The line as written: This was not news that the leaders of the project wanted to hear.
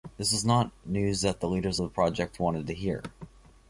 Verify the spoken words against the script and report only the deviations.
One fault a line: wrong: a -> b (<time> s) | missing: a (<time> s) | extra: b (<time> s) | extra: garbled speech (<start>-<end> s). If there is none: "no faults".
no faults